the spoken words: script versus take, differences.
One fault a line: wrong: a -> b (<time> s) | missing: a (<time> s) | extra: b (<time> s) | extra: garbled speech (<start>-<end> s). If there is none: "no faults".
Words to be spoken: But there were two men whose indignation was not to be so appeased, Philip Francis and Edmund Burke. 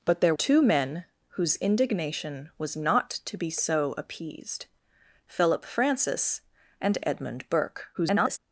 missing: were (0.3 s)
extra: garbled speech (7.9-8.4 s)